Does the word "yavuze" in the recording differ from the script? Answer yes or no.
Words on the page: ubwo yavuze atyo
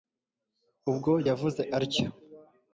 no